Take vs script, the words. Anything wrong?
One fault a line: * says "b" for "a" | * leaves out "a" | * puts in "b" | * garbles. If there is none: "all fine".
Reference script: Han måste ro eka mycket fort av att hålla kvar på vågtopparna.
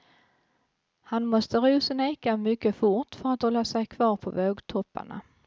* puts in "sin"
* says "för" for "av"
* puts in "sig"